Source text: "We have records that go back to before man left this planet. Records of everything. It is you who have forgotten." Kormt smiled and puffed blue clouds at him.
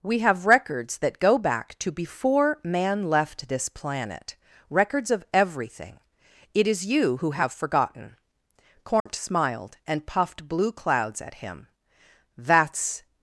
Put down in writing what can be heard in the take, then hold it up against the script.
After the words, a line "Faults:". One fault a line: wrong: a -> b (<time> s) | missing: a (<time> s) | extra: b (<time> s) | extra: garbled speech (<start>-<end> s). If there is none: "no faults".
"We have records that go back to before man left this planet. Records of everything. It is you who have forgotten." Kormt smiled and puffed blue clouds at him. "That's
Faults:
extra: That's (12.4 s)